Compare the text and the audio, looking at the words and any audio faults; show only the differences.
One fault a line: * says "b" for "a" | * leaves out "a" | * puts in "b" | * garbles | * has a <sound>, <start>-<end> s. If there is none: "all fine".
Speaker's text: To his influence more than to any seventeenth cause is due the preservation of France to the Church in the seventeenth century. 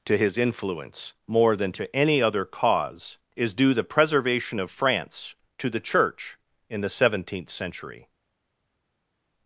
* says "other" for "seventeenth"